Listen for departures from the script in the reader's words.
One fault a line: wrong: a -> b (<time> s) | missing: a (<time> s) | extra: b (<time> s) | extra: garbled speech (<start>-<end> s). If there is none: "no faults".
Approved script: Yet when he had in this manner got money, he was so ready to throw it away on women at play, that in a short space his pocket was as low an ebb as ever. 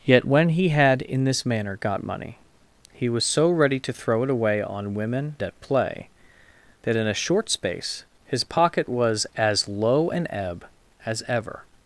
no faults